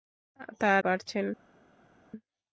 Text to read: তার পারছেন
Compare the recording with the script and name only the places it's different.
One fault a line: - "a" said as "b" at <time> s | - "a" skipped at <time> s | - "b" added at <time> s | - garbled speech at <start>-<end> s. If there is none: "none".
none